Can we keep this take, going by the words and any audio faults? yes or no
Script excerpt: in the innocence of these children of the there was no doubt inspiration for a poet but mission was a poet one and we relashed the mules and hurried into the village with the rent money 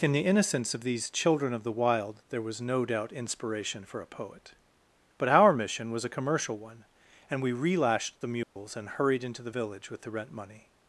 no